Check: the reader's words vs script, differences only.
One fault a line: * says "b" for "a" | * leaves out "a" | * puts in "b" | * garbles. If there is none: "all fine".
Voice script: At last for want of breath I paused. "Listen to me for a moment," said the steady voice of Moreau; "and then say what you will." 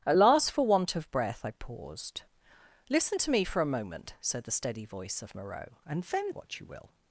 * leaves out "say"